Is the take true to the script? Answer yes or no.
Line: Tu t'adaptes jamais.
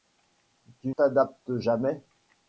yes